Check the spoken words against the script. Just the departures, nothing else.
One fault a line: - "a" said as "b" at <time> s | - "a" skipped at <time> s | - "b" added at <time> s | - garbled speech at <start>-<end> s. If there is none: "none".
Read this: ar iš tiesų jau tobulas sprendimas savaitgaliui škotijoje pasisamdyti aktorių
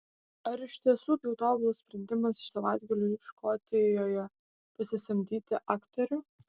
none